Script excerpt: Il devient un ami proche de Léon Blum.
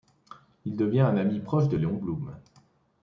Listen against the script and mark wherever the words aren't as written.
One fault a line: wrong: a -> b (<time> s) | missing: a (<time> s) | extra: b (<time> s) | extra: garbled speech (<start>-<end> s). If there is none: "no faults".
no faults